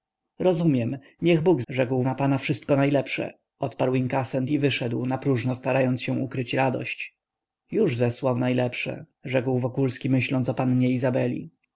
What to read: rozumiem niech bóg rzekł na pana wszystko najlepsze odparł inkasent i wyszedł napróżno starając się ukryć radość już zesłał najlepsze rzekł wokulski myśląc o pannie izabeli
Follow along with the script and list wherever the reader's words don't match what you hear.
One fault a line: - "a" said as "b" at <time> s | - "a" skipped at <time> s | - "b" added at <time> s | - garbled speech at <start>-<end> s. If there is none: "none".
none